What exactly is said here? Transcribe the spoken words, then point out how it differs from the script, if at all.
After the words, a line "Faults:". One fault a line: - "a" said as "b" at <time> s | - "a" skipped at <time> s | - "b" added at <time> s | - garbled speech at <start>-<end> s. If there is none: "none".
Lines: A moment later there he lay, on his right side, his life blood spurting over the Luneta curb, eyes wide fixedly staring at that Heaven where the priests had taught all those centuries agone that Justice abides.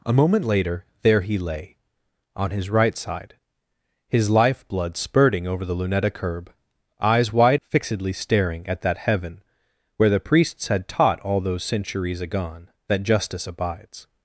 A moment later there he lay, on his right side, his life blood spurting over the Luneta curb, eyes wide fixedly staring at that Heaven where the priests had taught all those centuries agone that Justice abides.
Faults:
none